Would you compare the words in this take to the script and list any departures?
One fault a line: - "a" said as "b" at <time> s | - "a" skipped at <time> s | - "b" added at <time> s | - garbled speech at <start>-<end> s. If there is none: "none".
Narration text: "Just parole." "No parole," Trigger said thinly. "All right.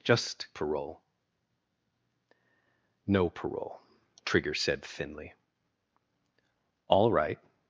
none